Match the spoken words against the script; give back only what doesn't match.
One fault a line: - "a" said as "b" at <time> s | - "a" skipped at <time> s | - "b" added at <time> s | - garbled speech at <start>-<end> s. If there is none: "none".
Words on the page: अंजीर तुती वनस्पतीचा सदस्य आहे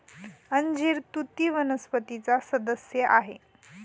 none